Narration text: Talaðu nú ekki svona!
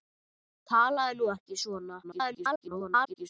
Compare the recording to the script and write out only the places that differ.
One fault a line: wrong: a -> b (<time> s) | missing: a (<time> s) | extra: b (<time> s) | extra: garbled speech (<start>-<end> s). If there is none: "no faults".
extra: garbled speech (2.0-3.3 s)